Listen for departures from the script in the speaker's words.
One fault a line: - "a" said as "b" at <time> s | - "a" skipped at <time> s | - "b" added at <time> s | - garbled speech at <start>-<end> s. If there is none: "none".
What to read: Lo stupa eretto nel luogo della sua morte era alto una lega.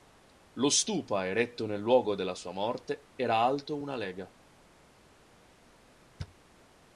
none